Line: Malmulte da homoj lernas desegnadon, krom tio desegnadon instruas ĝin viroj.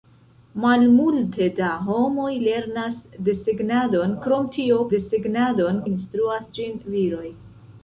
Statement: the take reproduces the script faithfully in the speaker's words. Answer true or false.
true